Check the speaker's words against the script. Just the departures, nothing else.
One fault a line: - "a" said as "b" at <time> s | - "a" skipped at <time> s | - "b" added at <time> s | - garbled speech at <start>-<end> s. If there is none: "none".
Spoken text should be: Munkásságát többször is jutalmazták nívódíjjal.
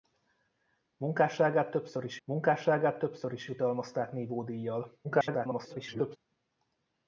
- "munkásságát többször is" added at 2.2 s
- garbled speech at 5.0-6.2 s